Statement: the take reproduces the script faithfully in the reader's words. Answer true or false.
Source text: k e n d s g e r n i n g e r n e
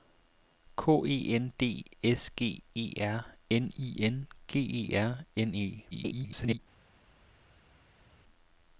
false